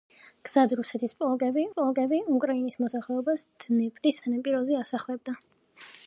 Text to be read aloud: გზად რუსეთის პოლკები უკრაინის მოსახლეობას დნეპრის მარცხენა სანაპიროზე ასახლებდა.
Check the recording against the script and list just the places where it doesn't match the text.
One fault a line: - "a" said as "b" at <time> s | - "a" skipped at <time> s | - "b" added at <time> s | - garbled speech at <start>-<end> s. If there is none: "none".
- "პოლკები" added at 1.7 s
- "მარცხენა" skipped at 4.2 s